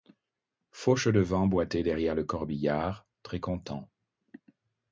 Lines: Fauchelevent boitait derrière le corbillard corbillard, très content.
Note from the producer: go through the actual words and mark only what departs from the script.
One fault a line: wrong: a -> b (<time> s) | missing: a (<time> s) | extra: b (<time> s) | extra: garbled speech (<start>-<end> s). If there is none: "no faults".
missing: corbillard (3.0 s)